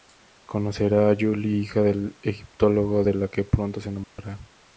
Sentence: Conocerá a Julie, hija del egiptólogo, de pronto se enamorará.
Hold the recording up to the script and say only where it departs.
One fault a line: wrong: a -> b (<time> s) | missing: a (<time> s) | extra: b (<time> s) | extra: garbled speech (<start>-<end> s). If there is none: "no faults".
extra: la que (3.1 s)